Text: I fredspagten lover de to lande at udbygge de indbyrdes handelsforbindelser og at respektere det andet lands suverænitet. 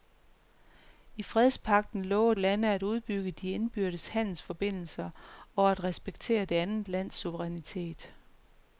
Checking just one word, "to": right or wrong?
wrong